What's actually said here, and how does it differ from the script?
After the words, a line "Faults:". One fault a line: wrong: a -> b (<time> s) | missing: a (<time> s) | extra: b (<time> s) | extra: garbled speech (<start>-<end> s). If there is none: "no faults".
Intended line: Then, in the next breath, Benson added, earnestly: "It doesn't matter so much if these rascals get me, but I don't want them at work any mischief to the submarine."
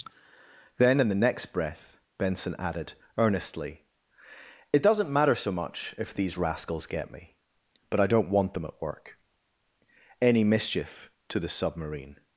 Then, in the next breath, Benson added, earnestly: "It doesn't matter so much if these rascals get me, but I don't want them at work any mischief to the submarine."
Faults:
no faults